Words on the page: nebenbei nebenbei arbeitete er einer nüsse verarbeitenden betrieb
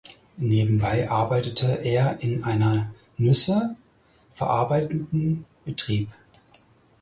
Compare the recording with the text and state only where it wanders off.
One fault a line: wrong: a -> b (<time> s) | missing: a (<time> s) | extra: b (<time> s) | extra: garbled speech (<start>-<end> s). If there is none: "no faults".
missing: nebenbei (1.1 s)
extra: in (2.2 s)